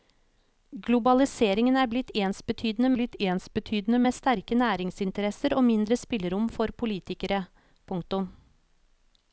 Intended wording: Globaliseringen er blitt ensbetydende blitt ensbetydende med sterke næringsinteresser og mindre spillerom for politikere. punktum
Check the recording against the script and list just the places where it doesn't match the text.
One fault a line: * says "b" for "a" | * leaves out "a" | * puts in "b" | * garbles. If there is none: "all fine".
all fine